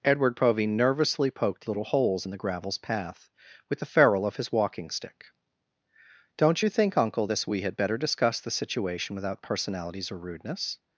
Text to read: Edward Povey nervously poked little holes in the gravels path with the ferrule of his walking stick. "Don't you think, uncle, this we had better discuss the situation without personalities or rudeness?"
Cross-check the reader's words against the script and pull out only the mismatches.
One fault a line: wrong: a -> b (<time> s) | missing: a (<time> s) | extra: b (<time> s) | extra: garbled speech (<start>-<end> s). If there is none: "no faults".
no faults